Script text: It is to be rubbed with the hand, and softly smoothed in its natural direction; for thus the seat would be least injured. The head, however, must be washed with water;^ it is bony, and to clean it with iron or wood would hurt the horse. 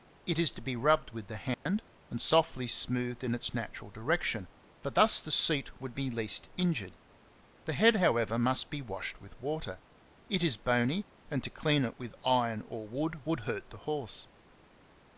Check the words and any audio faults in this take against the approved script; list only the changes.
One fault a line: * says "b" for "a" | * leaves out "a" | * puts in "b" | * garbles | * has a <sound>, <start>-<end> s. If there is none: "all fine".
* has a dropout, 1.5-1.7 s